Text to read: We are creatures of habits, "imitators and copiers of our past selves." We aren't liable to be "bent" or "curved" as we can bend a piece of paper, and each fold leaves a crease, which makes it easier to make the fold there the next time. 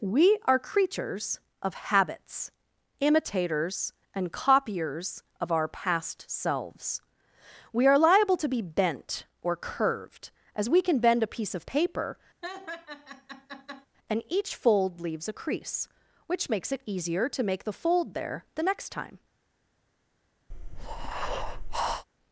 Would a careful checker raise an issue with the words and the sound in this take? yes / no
yes